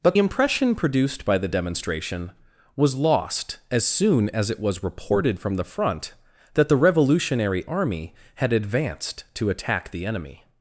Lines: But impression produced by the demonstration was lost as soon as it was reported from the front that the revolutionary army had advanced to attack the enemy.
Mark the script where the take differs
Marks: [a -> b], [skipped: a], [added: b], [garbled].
But impression produced by the demonstration was lost as soon as it was reported from the front that the revolutionary army had advanced to attack the enemy.